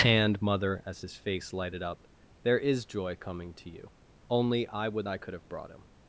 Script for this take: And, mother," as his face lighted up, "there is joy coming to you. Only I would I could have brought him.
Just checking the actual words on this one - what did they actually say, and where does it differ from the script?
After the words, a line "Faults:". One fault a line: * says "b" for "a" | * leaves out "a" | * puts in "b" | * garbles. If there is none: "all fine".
And, mother," as his face lighted up, "there is joy coming to you. Only I would I could have brought him.
Faults:
all fine